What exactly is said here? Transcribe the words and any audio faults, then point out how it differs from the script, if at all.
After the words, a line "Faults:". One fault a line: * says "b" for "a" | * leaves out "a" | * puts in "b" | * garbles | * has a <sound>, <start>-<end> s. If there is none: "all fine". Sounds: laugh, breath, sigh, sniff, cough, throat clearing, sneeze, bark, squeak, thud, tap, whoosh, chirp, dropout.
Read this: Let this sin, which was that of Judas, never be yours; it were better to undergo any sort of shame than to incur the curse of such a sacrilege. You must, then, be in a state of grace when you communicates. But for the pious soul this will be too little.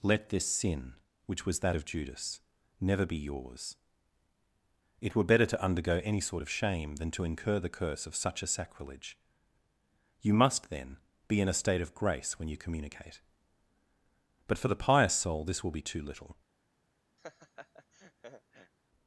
Let this sin, which was that of Judas, never be yours; it were better to undergo any sort of shame than to incur the curse of such a sacrilege. You must, then, be in a state of grace when you communicate. But for the pious soul this will be too little.
Faults:
* says "communicate" for "communicates"
* has a laugh, 17.2-18.7 s